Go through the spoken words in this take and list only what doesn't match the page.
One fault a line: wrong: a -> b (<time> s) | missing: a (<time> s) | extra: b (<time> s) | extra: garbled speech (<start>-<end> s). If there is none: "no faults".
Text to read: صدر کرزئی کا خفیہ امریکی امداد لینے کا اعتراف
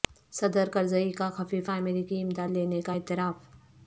no faults